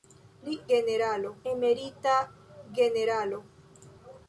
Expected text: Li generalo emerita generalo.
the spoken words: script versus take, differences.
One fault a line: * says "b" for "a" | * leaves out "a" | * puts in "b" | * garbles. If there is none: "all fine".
all fine